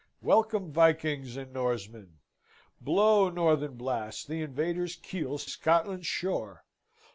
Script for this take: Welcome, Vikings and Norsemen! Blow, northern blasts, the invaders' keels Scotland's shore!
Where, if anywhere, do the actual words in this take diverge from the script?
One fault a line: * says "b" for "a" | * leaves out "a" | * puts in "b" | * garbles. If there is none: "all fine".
all fine